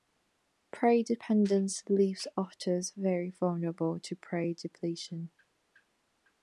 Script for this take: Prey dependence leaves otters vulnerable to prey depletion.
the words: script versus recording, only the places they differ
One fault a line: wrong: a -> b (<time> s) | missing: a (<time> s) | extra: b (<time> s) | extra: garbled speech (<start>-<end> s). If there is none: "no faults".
extra: very (3.0 s)